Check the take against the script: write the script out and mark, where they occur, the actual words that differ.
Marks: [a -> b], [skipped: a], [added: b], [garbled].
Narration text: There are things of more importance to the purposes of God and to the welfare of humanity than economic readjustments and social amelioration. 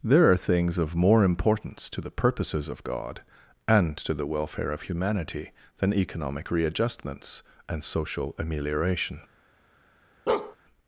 There are things of more importance to the purposes of God and to the welfare of humanity than economic readjustments and social amelioration.